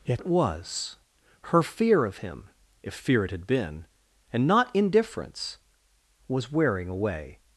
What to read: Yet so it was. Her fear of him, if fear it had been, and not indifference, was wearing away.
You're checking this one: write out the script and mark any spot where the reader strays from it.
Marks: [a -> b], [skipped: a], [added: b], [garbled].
Yet [skipped: so] it was. Her fear of him, if fear it had been, and not indifference, was wearing away.